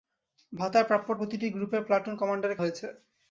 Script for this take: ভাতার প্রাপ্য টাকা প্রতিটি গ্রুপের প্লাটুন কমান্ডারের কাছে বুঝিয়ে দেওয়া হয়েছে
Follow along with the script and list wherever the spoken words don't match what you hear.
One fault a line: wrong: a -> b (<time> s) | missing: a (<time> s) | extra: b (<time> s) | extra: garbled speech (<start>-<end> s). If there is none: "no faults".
missing: টাকা (1.1 s)
missing: কাছে বুঝিয়ে দেওয়া (2.6 s)